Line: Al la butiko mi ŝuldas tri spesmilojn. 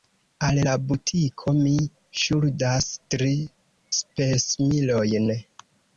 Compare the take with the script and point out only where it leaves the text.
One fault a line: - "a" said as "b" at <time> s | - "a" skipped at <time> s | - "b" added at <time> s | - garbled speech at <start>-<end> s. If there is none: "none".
none